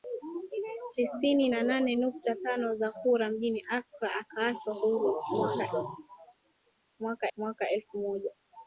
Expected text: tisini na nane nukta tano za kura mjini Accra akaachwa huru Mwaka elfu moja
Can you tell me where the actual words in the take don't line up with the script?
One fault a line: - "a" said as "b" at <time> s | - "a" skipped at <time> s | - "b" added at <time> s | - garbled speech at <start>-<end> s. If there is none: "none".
- "Mwaka" added at 7.4 s